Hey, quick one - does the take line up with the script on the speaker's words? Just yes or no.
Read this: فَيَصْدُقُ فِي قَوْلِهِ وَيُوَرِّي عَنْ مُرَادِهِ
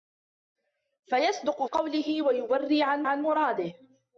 no